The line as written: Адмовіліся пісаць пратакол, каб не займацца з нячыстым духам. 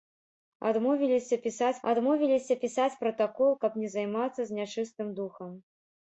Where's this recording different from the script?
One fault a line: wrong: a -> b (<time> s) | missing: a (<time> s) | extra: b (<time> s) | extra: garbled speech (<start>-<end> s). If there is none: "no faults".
extra: адмовіліся пісаць (1.9 s)